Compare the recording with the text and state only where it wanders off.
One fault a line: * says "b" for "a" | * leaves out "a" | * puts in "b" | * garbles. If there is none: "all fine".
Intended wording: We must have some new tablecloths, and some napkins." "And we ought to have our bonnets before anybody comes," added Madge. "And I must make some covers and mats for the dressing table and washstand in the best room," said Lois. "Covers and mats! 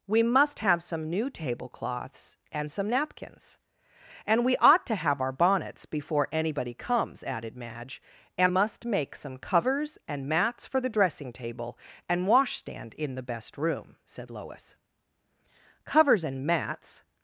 * leaves out "I"